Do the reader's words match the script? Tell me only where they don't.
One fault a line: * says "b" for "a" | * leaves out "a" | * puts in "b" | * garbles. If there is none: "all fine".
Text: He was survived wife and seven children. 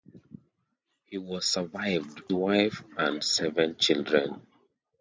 all fine